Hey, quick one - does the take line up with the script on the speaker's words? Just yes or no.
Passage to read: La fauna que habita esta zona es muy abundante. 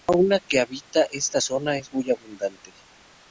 yes